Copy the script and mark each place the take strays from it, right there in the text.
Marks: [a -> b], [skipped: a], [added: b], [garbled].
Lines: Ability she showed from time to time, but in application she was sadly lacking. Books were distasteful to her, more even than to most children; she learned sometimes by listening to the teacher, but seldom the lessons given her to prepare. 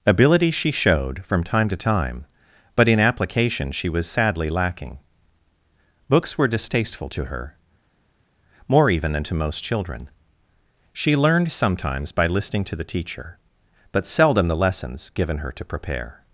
Ability she showed from time to time, but in application she was sadly lacking. Books were distasteful to her, more even than to most children; she learned sometimes by listening to the teacher, but seldom the lessons given her to prepare.